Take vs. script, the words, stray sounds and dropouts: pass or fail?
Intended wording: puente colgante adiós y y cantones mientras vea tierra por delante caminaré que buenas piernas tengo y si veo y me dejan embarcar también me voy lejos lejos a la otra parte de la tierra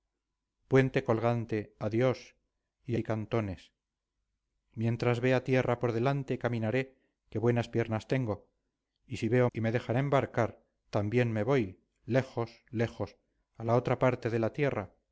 pass